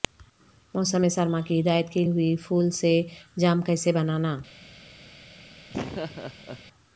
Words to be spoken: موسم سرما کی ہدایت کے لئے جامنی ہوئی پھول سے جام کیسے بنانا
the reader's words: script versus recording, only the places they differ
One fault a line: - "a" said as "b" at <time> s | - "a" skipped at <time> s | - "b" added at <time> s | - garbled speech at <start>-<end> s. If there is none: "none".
- "لئے جامنی" skipped at 2.0 s